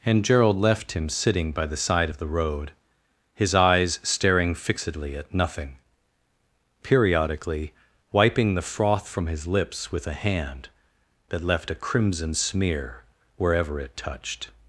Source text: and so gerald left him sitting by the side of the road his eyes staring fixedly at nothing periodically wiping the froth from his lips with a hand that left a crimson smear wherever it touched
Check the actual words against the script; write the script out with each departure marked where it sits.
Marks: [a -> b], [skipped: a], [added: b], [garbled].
and [skipped: so] gerald left him sitting by the side of the road his eyes staring fixedly at nothing periodically wiping the froth from his lips with a hand that left a crimson smear wherever it touched